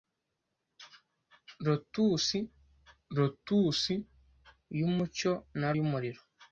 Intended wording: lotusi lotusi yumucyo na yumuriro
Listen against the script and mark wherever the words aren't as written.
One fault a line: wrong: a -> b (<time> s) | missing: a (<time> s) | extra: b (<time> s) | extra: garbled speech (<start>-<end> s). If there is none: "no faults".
no faults